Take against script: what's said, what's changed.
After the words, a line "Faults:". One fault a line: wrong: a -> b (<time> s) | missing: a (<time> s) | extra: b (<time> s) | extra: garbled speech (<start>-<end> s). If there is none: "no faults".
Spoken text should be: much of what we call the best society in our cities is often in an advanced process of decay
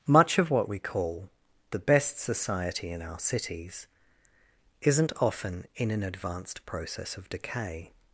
much of what we call the best society in our cities isn't often in an advanced process of decay
Faults:
wrong: is -> isn't (4.8 s)